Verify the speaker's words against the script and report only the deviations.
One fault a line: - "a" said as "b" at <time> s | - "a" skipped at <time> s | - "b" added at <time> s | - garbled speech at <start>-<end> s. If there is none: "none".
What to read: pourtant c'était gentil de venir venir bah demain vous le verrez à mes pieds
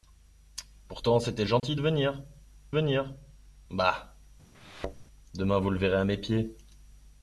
none